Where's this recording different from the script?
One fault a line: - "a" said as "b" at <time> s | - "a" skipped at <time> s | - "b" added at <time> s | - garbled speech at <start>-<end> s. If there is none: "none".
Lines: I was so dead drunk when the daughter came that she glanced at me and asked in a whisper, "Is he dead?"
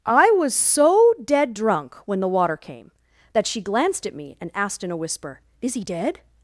- "daughter" said as "water" at 2.3 s